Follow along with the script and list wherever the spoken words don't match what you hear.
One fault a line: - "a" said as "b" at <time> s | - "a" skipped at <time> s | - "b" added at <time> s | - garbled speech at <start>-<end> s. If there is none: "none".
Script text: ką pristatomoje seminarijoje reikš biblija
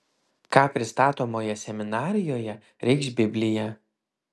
none